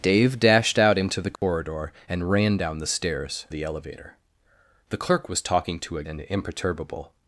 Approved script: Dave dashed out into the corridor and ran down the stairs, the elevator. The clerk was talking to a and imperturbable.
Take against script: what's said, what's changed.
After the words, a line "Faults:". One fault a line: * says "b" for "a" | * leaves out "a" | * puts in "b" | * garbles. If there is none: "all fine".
Dave dashed out into the corridor and ran down the stairs, the elevator. The clerk was talking to a and imperturbable.
Faults:
all fine